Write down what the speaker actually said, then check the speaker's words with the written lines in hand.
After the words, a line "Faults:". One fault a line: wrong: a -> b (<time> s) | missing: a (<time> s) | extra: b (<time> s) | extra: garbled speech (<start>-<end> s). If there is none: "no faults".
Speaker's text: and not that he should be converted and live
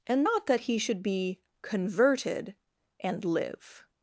and not that he should be converted and live
Faults:
no faults